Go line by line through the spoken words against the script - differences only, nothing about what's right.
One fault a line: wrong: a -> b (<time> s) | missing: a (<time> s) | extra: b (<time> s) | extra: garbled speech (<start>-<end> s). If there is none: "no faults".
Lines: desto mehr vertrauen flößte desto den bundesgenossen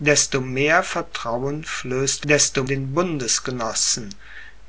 no faults